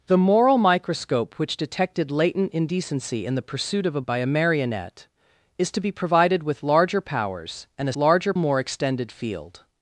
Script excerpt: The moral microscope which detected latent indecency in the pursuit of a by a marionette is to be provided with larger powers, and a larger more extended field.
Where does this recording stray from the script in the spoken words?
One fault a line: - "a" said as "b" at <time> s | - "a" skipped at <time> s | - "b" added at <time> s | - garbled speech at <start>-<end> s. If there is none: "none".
none